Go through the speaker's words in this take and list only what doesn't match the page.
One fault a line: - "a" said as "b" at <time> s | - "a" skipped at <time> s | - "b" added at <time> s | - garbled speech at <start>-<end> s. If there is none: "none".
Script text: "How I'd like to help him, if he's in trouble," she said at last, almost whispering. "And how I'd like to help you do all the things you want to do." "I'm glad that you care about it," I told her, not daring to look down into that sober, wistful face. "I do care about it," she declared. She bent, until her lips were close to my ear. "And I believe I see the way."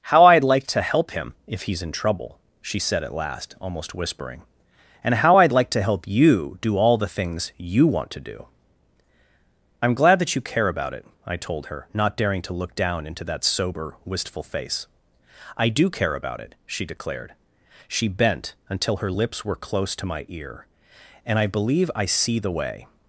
none